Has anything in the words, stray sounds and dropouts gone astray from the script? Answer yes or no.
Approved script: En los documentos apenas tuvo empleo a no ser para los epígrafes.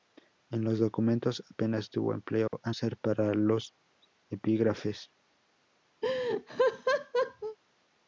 yes